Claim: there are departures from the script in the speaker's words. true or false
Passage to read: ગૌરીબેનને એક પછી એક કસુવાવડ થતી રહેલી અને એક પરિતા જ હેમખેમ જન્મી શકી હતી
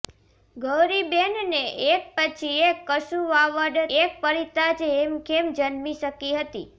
true